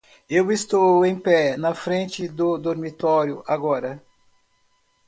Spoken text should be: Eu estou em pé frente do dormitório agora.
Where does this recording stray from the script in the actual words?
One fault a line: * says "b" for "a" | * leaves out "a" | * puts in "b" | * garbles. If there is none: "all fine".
* puts in "na"